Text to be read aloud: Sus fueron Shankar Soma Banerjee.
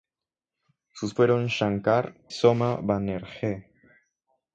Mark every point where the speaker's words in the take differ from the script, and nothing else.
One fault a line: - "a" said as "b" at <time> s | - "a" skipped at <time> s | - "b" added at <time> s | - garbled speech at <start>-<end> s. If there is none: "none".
none